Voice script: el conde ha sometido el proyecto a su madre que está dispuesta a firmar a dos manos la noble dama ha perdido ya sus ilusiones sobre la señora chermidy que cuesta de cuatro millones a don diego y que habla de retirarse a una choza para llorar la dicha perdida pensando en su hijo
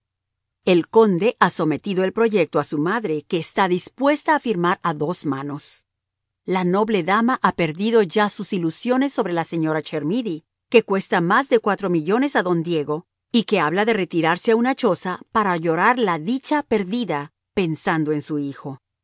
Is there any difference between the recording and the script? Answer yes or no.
yes